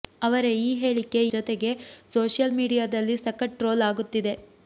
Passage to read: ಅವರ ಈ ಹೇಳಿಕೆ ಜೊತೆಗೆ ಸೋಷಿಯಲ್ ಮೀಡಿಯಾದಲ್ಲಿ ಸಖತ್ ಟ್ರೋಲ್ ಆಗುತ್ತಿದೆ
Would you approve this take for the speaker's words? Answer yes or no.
yes